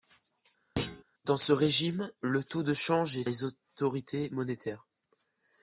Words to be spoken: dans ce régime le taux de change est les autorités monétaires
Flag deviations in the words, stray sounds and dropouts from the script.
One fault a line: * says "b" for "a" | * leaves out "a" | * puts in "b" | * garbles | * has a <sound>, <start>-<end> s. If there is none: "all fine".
* has a thud, 0.8-1.0 s